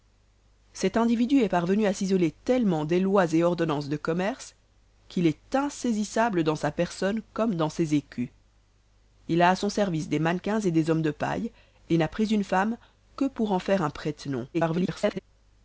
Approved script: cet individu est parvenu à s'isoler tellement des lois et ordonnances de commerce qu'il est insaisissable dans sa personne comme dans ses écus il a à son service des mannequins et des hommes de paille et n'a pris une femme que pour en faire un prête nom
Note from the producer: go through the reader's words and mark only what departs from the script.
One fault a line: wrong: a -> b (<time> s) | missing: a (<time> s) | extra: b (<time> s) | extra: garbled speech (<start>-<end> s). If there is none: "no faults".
extra: garbled speech (14.5-15.2 s)